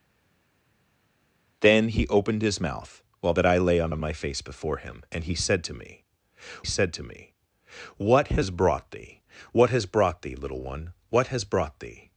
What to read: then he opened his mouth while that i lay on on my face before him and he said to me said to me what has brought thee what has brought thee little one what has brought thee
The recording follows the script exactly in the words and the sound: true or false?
true